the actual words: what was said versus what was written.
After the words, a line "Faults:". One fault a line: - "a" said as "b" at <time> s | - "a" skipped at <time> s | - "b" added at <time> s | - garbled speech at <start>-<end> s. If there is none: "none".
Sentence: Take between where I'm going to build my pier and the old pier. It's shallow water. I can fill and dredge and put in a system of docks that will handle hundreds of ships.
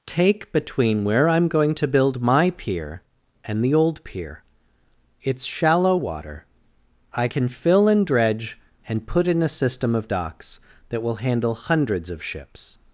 Take between where I'm going to build my pier and the old pier. It's shallow water. I can fill and dredge and put in a system of docks that will handle hundreds of ships.
Faults:
none